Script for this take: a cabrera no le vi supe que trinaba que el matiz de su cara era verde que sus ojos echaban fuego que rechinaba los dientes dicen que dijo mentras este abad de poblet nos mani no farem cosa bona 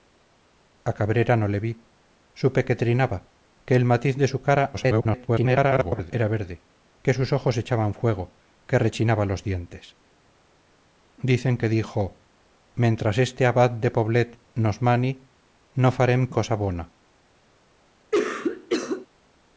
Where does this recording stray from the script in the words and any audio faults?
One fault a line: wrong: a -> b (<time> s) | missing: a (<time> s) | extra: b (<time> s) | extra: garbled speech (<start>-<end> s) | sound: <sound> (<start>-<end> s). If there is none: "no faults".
extra: garbled speech (4.7-6.1 s)
sound: cough (18.1-19.1 s)